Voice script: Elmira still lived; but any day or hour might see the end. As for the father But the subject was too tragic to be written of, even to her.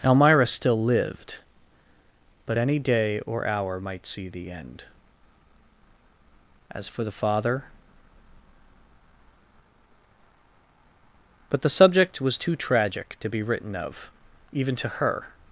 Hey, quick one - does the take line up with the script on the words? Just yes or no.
yes